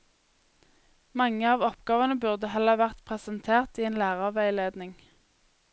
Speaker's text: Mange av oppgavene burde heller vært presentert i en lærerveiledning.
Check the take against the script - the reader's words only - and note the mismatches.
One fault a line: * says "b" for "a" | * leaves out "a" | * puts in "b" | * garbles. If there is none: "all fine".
all fine